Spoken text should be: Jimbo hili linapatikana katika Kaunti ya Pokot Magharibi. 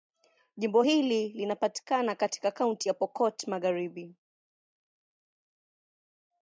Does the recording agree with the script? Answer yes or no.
yes